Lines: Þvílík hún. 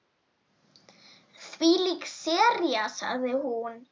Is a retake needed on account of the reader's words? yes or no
yes